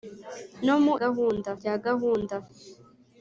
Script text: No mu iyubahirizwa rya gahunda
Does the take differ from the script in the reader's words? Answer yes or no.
yes